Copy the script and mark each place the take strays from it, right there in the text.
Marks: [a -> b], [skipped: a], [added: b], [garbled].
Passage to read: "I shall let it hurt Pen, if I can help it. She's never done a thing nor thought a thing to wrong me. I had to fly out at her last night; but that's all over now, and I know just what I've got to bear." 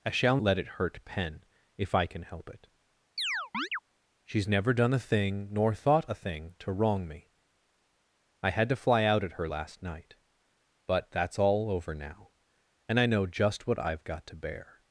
"I shall let it hurt Pen, if I can help it. She's never done a thing nor thought a thing to wrong me. I had to fly out at her last night; but that's all over now, and I know just what I've got to bear."